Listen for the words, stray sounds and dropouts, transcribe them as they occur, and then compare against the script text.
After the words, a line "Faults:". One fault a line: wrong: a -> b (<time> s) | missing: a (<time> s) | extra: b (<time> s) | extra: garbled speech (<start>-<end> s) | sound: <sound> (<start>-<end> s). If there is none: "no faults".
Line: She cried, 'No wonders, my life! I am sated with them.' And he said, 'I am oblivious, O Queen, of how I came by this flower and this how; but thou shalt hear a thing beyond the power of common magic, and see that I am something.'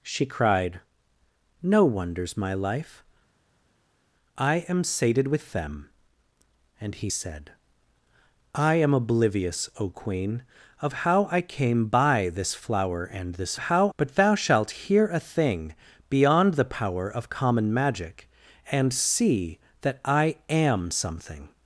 She cried, 'No wonders, my life! I am sated with them.' And he said, 'I am oblivious, O Queen, of how I came by this flower and this how; but thou shalt hear a thing beyond the power of common magic, and see that I am something.'
Faults:
no faults